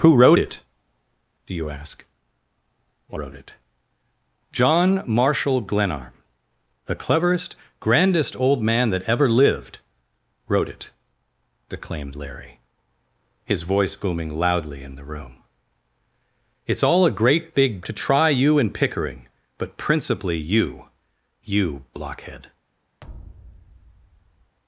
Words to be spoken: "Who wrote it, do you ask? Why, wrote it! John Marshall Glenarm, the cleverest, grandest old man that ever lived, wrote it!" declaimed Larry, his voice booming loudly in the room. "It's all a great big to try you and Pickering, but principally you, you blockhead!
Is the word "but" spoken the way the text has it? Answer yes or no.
yes